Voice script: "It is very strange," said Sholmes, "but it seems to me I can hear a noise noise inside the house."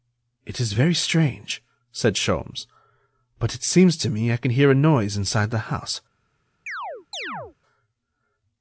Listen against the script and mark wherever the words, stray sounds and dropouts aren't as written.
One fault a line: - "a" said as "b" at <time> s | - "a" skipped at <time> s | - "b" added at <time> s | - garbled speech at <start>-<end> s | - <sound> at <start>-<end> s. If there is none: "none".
- "noise" skipped at 5.2 s
- chirp at 6.7-7.6 s